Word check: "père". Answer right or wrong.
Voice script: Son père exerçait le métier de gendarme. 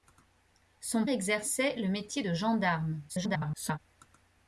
wrong